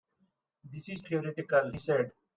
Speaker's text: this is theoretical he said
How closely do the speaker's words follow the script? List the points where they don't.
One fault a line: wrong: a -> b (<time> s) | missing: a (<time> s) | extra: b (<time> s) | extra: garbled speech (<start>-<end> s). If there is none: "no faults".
no faults